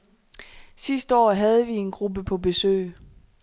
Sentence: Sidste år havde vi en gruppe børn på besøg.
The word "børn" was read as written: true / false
false